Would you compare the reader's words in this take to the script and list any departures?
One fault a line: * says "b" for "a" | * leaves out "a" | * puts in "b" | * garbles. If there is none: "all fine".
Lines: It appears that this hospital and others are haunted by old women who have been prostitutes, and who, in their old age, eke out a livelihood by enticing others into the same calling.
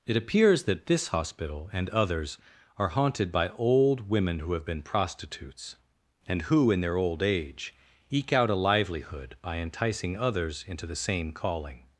all fine